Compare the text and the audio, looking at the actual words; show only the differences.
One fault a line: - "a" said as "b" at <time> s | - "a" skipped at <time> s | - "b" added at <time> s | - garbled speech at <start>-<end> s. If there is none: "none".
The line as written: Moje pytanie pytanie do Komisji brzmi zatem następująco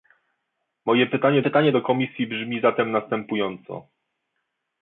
none